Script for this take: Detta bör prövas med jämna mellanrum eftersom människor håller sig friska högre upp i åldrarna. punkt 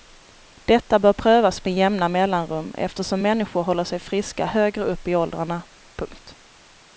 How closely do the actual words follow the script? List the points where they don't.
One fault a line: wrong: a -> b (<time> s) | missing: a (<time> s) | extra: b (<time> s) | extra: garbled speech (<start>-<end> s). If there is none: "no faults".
no faults